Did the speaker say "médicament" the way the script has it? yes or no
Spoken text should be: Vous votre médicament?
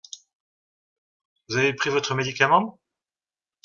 yes